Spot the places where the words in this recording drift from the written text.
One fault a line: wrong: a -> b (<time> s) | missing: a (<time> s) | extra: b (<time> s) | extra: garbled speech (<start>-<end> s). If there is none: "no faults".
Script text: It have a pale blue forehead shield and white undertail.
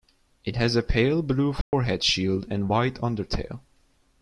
wrong: have -> has (0.6 s)